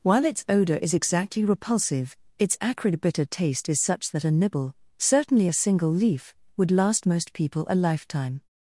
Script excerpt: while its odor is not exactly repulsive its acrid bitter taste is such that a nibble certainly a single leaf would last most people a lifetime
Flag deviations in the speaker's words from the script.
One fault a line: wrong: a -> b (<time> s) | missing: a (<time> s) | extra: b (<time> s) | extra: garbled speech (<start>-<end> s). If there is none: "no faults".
missing: not (0.9 s)